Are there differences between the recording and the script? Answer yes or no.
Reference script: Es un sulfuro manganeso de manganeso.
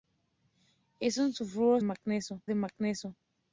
no